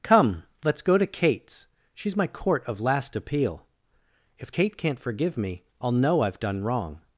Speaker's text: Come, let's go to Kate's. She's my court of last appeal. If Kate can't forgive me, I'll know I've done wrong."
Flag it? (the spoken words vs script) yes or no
no